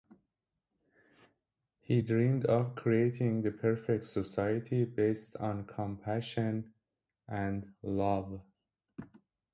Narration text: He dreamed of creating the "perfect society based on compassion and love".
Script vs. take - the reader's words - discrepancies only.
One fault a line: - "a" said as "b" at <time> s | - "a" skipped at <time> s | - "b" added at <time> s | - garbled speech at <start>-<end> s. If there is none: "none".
none